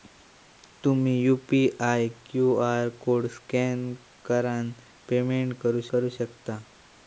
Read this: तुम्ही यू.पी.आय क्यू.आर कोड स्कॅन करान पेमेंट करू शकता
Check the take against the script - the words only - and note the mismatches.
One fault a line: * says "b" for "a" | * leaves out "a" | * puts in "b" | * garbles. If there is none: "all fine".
* puts in "करू"